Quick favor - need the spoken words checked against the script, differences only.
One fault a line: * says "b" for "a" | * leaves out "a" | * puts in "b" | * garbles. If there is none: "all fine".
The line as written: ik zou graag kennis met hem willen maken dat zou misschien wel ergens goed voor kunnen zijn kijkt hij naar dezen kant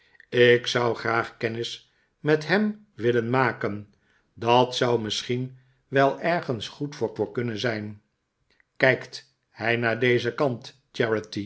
* puts in "voor"